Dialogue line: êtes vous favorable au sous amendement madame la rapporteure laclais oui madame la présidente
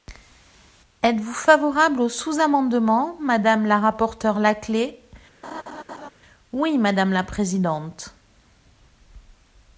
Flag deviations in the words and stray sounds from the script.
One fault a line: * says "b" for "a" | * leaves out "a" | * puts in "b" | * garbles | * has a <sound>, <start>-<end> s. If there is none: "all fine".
* has a laugh, 5.4-6.1 s